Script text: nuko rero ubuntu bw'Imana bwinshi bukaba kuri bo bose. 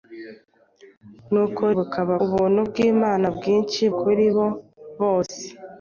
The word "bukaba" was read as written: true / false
false